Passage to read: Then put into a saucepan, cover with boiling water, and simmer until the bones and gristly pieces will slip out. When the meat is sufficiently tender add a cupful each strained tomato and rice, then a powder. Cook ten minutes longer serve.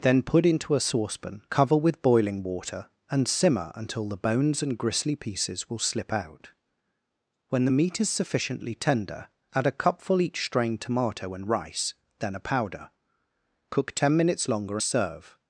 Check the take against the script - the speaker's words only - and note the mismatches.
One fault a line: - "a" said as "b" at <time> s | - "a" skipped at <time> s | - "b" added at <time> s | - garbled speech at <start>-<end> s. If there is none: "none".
none